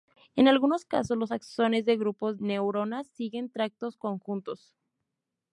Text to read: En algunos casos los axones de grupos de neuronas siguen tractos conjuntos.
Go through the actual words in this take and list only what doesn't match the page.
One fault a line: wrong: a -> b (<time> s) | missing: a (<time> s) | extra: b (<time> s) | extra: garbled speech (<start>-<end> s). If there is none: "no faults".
missing: de (2.4 s)